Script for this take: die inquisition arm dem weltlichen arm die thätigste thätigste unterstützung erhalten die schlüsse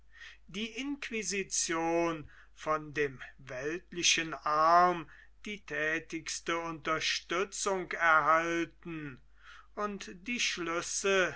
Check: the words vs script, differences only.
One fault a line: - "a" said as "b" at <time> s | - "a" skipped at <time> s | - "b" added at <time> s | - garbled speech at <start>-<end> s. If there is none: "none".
- "arm" said as "von" at 2.5 s
- "thätigste" skipped at 6.6 s
- "und" added at 9.8 s